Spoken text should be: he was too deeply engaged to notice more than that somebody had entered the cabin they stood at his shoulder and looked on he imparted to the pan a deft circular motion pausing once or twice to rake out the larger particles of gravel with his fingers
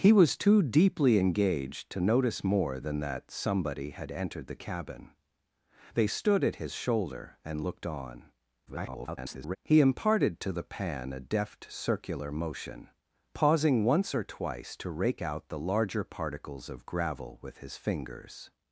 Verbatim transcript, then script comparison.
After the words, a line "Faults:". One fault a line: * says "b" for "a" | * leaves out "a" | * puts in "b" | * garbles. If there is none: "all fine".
he was too deeply engaged to notice more than that somebody had entered the cabin they stood at his shoulder and looked on [garbled] he imparted to the pan a deft circular motion pausing once or twice to rake out the larger particles of gravel with his fingers
Faults:
* garbles